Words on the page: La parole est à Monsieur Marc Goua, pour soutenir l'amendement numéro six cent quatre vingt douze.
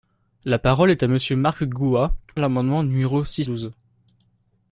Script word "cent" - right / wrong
wrong